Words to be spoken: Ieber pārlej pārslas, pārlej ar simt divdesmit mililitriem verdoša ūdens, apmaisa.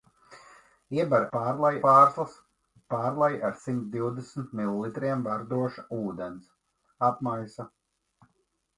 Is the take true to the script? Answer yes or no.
yes